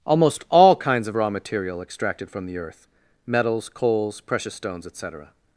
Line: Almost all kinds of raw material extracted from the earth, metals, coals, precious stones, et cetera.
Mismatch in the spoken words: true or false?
false